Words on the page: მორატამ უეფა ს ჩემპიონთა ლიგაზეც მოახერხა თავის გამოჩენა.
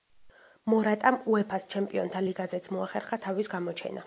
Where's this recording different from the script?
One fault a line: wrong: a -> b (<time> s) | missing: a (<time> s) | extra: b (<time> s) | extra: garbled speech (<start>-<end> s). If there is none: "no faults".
no faults